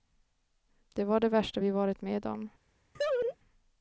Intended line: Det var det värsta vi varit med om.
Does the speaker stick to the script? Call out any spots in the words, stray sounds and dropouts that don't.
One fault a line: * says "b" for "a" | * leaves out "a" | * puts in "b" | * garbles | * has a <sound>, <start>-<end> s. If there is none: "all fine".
* has a laugh, 2.9-3.4 s